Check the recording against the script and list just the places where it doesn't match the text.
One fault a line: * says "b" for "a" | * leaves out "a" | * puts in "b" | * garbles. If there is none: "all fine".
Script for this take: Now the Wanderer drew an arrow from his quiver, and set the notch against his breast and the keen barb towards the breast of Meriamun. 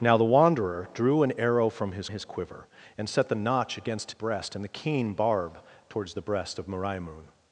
* puts in "his"
* leaves out "his"